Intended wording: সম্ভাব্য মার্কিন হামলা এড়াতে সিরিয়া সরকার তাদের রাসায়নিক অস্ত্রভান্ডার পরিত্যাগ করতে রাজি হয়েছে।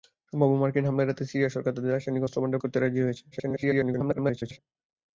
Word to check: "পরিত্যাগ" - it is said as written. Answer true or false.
false